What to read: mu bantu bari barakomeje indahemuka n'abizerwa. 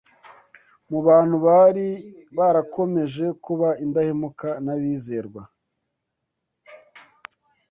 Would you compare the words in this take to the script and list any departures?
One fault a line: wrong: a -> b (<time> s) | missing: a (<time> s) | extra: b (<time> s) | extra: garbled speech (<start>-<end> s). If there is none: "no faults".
extra: kuba (3.4 s)